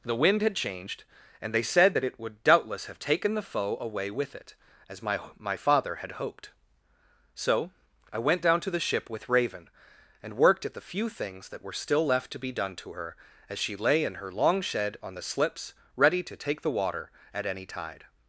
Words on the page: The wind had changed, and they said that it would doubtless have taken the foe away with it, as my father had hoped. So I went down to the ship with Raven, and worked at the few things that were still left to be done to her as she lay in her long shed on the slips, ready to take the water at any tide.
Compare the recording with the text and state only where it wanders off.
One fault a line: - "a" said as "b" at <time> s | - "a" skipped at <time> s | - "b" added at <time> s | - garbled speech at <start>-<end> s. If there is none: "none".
- "my" added at 5.4 s